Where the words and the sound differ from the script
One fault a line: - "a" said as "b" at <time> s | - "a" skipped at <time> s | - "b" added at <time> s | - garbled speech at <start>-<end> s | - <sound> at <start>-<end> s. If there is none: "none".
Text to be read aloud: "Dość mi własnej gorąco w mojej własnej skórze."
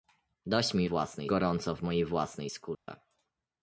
- dropout at 2.7-2.9 s